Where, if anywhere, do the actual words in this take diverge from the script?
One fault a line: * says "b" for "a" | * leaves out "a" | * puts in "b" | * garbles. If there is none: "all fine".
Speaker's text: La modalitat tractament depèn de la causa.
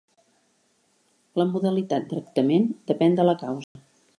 all fine